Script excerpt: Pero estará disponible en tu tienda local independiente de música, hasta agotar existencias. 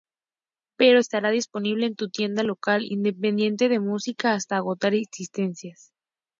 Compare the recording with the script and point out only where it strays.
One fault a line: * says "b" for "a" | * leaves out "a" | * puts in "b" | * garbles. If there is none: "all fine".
all fine